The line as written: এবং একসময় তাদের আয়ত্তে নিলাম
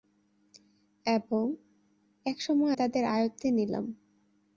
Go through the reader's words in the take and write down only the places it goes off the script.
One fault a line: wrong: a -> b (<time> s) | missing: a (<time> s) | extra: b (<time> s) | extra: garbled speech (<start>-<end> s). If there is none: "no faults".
no faults